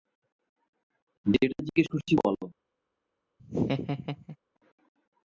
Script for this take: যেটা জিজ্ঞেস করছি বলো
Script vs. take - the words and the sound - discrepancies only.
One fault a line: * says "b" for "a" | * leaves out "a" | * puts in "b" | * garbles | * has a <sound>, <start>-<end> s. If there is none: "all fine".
* has a laugh, 3.4-4.4 s